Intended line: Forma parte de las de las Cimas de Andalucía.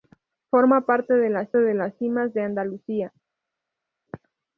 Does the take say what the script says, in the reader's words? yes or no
yes